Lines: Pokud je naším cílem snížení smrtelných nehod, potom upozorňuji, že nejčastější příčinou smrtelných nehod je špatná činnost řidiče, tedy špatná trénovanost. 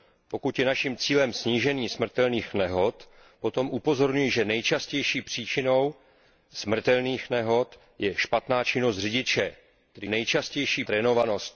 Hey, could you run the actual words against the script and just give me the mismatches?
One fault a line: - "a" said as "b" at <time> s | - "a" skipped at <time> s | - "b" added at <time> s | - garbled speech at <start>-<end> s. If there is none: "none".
- "špatná" said as "nejčastější" at 10.1 s